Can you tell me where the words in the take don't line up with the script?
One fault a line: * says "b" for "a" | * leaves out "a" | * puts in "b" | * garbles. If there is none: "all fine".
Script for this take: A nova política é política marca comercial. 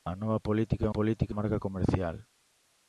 all fine